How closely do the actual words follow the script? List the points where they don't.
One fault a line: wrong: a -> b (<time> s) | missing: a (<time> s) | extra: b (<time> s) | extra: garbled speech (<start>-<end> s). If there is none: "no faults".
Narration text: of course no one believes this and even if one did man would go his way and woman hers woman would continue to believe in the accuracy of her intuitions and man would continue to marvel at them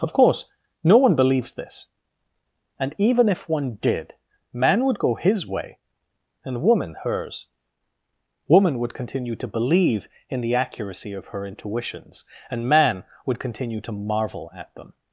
no faults